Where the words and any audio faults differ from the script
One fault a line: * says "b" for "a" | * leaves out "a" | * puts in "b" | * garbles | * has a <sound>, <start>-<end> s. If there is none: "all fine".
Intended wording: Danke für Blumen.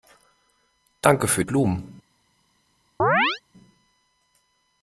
* has a chirp, 3.0-3.4 s